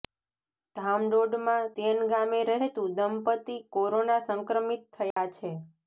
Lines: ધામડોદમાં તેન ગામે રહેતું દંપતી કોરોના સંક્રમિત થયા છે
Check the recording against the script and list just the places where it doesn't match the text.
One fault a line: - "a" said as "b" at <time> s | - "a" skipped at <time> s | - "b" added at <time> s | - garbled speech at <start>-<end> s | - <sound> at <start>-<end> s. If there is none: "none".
- dropout at 5.1-5.2 s